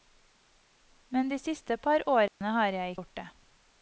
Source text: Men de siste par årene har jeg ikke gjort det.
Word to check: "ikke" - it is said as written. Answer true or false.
false